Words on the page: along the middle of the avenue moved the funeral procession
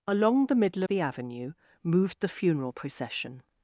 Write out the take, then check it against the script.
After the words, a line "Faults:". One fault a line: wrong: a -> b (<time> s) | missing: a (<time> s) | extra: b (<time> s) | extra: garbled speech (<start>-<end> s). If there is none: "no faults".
along the middle the avenue moved the funeral procession
Faults:
missing: of (0.8 s)